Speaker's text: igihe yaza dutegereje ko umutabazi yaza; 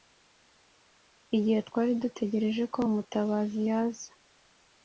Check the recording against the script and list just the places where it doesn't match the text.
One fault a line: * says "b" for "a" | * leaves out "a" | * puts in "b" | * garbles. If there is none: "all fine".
* says "twari" for "yaza"